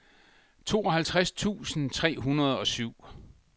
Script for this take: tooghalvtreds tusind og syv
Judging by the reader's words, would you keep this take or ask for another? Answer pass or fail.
fail